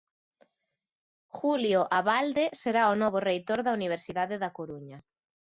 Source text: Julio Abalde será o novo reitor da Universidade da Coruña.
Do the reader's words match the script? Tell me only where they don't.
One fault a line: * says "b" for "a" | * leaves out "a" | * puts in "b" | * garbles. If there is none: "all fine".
all fine